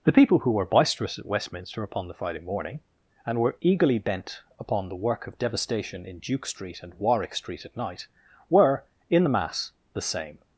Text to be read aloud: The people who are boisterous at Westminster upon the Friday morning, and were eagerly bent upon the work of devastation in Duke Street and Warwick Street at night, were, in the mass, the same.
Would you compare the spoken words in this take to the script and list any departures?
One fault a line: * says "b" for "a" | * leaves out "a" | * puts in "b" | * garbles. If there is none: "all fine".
* says "were" for "are"